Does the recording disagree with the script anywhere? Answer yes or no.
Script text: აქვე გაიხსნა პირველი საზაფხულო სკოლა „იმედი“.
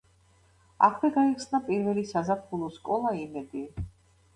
no